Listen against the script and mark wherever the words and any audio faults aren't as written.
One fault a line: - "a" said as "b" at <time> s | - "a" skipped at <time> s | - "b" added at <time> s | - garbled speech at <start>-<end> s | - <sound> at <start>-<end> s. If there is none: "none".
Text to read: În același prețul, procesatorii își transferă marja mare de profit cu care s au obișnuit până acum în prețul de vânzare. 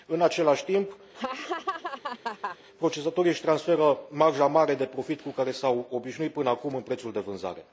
- "prețul" said as "timp" at 0.7 s
- laugh at 1.1-2.6 s